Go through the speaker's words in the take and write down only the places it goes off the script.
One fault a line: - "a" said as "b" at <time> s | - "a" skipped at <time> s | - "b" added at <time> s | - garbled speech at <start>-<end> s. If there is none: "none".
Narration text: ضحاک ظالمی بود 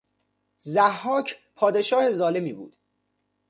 - "پادشاه" added at 1.5 s